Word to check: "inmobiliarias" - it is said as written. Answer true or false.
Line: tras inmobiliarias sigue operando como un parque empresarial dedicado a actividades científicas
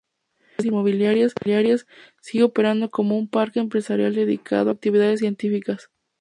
true